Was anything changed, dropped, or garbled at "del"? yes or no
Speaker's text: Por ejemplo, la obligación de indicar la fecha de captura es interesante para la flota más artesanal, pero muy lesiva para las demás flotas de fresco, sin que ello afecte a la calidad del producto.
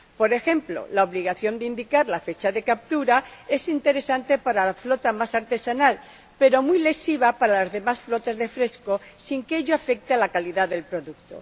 no